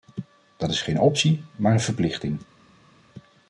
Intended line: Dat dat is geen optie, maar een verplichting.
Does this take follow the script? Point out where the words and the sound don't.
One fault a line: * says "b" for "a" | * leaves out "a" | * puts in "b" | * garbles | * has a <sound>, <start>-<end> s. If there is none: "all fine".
* leaves out "dat"